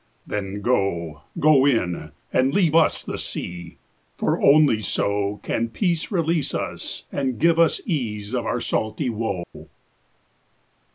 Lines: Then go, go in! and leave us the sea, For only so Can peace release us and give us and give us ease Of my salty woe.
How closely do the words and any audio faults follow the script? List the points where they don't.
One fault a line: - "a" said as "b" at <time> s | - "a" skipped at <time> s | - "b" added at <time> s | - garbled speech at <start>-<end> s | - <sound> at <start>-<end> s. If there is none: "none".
- "and give us" skipped at 7.8 s
- "my" said as "our" at 8.4 s
- dropout at 9.4-9.5 s